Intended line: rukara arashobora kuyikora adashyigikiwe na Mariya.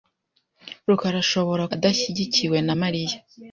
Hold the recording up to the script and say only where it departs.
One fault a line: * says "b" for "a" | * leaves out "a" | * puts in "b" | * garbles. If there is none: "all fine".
* leaves out "kuyikora"